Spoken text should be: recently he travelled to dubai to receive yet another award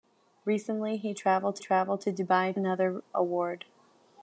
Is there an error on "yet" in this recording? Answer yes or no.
yes